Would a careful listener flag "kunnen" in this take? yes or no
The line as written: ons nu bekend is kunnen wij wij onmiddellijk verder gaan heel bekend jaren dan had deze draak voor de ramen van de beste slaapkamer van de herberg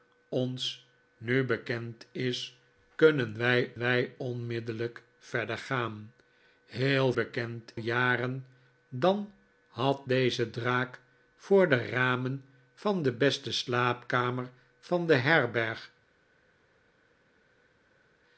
no